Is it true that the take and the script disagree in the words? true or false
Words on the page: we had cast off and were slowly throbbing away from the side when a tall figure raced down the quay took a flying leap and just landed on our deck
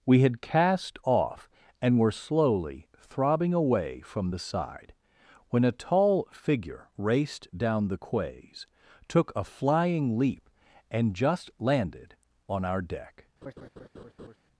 true